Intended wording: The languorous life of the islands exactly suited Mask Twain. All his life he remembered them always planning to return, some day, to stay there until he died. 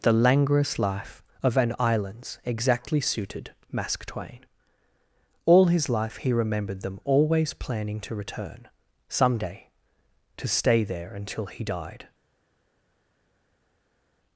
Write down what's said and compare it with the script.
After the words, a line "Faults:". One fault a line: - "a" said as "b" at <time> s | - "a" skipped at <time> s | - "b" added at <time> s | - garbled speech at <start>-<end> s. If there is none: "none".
The languorous life of an islands exactly suited Mask Twain. All his life he remembered them always planning to return, some day, to stay there until he died.
Faults:
- "the" said as "an" at 1.6 s